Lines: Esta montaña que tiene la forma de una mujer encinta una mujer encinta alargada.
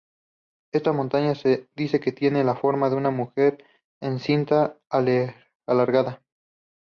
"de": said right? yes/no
yes